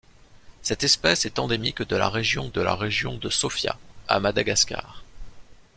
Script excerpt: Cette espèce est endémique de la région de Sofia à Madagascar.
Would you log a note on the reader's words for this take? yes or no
yes